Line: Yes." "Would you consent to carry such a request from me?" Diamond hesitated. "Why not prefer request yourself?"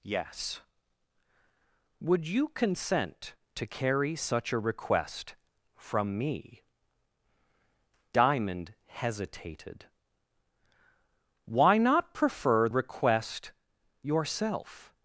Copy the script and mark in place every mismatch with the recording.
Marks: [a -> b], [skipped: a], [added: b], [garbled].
Yes." "Would you consent to carry such a request from me?" Diamond hesitated. "Why not prefer request yourself?"